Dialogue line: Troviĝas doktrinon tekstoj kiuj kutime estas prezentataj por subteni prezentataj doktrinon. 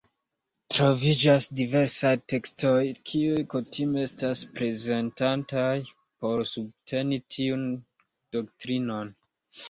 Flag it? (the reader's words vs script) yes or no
yes